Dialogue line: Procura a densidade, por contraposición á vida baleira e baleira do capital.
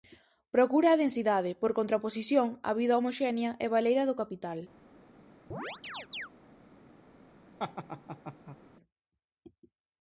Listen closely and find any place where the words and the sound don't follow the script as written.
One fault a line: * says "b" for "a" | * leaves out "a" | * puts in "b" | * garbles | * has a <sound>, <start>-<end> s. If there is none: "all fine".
* says "homoxénea" for "baleira"
* has a chirp, 5.5-6.3 s
* has a laugh, 7.6-8.6 s